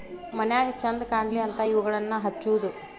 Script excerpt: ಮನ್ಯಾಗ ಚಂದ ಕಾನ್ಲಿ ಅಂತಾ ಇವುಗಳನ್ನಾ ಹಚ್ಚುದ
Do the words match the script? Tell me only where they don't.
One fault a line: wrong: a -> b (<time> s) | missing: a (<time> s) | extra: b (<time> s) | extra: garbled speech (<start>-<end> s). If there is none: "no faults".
no faults